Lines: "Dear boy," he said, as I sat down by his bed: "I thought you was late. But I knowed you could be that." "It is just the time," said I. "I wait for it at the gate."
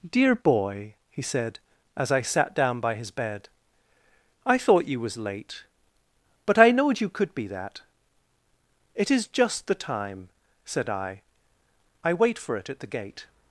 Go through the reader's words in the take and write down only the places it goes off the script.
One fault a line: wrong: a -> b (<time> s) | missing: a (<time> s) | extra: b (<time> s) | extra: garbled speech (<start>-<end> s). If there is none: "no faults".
no faults